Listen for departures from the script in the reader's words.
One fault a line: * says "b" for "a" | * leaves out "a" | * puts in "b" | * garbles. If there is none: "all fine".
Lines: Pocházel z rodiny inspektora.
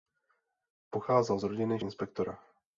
all fine